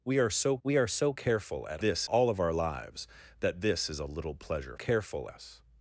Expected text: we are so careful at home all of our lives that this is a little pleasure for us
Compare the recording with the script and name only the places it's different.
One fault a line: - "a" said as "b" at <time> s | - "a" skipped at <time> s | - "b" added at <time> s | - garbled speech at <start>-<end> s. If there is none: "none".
- "we are so" added at 0.6 s
- "home" said as "this" at 1.8 s
- "for" said as "careful" at 4.7 s